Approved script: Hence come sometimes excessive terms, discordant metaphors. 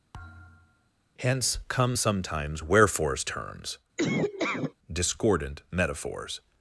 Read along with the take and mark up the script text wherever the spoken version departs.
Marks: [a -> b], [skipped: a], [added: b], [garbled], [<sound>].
[thud] Hence come sometimes [excessive -> wherefores] terms, [laugh] discordant metaphors.